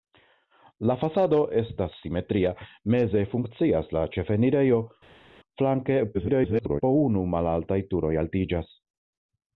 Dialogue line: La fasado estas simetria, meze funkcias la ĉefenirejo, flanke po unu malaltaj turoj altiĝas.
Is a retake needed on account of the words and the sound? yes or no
yes